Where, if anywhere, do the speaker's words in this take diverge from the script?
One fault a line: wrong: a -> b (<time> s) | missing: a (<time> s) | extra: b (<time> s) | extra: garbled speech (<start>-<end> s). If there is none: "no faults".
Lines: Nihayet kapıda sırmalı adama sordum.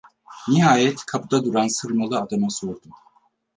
extra: duran (1.5 s)